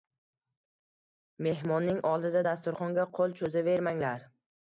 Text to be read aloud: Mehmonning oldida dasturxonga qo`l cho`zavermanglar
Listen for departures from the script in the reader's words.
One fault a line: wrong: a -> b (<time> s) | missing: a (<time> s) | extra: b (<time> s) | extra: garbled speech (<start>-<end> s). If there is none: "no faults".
no faults